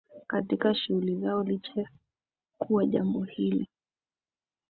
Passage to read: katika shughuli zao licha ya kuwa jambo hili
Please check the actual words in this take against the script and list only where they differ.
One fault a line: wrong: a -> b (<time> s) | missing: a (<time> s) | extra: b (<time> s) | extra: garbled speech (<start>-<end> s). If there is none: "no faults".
missing: ya (1.9 s)